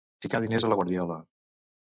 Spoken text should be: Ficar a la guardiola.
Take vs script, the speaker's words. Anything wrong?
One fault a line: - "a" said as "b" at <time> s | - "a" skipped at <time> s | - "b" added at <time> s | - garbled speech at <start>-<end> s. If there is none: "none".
- "diners" added at 0.4 s